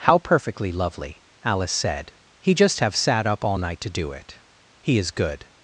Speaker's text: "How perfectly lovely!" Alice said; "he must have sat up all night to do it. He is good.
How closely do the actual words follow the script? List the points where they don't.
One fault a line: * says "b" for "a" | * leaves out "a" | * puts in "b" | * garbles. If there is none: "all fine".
* says "just" for "must"